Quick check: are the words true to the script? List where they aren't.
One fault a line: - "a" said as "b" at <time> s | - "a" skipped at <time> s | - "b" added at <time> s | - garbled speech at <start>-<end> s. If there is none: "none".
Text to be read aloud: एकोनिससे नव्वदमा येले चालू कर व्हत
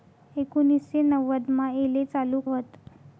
- "कर" skipped at 2.4 s